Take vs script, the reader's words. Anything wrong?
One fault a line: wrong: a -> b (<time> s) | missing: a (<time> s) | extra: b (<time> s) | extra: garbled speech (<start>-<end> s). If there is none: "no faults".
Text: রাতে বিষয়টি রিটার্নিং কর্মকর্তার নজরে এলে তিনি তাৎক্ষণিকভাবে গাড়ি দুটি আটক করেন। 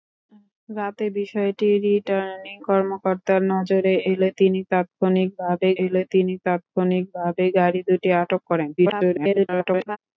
extra: এলে তিনি তাৎক্ষণিকভাবে (5.8 s)
extra: garbled speech (8.8-10.0 s)